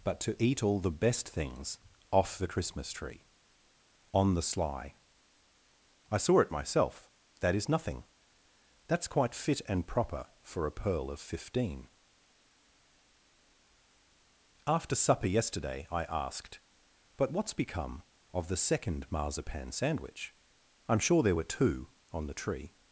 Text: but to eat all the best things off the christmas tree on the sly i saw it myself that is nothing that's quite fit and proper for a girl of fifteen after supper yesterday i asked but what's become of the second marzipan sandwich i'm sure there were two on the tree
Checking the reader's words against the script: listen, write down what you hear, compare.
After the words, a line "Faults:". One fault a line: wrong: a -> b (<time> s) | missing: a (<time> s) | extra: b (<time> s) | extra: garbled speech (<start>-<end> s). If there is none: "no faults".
but to eat all the best things off the christmas tree on the sly i saw it myself that is nothing that's quite fit and proper for a pearl of fifteen after supper yesterday i asked but what's become of the second marzipan sandwich i'm sure there were two on the tree
Faults:
wrong: girl -> pearl (10.7 s)